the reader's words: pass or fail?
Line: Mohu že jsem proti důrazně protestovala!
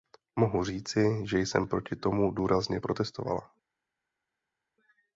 fail